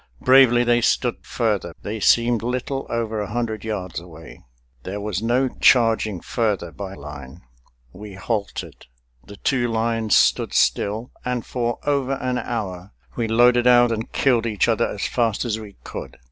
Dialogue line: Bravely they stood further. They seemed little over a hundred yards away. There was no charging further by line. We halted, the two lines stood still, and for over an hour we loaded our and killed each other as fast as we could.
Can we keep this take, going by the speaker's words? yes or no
yes